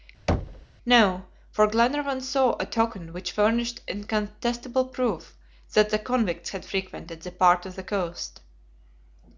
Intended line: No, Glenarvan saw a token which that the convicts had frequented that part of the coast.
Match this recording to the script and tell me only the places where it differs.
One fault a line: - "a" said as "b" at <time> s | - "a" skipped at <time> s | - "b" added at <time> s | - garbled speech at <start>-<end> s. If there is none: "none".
- "for" added at 1.5 s
- "furnished incontestable proof" added at 3.3 s